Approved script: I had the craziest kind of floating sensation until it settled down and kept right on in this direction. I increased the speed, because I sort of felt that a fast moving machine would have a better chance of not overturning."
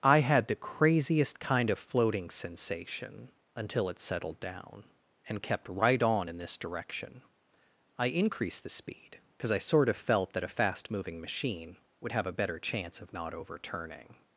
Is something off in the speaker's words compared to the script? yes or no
no